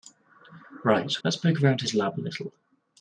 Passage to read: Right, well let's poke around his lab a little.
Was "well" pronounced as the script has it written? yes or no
no